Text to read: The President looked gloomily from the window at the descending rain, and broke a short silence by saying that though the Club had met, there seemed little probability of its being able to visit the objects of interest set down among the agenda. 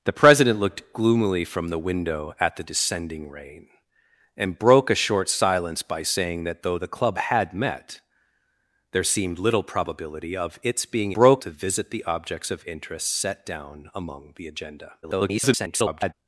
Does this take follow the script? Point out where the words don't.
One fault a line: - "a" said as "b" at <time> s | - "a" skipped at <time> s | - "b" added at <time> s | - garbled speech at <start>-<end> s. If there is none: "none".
- "able" said as "broke" at 11.1 s
- garbled speech at 15.0-16.1 s